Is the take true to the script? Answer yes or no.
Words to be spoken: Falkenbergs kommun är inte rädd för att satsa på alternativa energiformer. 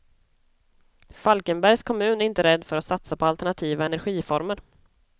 yes